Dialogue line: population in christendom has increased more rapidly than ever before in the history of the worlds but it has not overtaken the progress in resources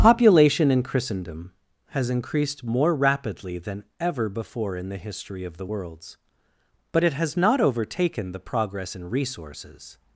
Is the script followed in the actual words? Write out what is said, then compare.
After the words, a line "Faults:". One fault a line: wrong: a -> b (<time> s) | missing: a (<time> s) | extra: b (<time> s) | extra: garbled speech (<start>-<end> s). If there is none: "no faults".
population in christendom has increased more rapidly than ever before in the history of the worlds but it has not overtaken the progress in resources
Faults:
no faults